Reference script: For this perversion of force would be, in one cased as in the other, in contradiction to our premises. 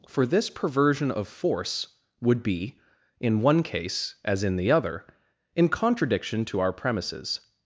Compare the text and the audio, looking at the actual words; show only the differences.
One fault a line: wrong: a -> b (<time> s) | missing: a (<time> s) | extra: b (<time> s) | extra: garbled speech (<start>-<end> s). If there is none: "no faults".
wrong: cased -> case (3.6 s)